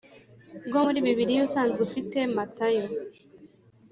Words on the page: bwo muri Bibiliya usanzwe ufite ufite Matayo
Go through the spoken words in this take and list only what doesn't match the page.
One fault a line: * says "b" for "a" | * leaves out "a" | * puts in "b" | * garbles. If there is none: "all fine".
* leaves out "ufite"